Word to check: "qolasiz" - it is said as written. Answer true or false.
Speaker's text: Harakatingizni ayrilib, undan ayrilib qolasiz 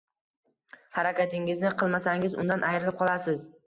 true